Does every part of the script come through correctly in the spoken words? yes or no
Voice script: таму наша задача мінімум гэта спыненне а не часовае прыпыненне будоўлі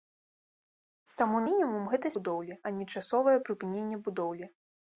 no